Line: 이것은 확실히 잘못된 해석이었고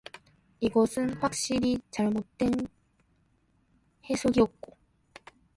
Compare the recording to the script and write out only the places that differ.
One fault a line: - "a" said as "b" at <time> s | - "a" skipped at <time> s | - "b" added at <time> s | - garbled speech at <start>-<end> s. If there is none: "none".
none